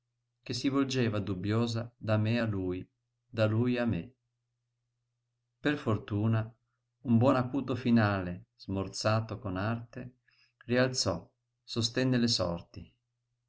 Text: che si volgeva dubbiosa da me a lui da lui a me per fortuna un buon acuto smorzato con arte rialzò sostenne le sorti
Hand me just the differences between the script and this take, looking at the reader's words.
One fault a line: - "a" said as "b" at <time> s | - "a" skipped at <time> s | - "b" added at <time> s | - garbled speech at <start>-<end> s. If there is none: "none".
- "finale" added at 7.7 s